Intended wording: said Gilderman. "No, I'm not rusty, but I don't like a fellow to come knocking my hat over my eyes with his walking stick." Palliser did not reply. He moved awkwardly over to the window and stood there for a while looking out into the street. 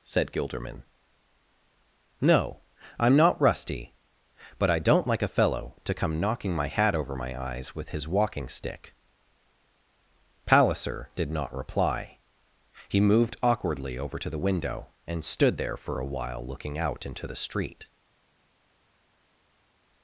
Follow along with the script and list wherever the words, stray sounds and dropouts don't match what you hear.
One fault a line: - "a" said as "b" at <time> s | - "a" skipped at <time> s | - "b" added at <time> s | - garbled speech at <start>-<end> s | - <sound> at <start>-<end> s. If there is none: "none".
none